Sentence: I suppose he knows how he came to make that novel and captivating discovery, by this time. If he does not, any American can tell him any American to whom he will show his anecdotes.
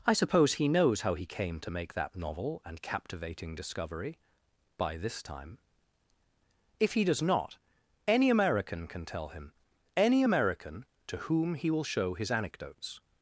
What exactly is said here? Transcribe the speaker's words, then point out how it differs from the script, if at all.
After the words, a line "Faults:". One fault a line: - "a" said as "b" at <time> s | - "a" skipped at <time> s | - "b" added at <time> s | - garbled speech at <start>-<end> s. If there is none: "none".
I suppose he knows how he came to make that novel and captivating discovery, by this time. If he does not, any American can tell him any American to whom he will show his anecdotes.
Faults:
none